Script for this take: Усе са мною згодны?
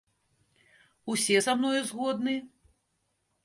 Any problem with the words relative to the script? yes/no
no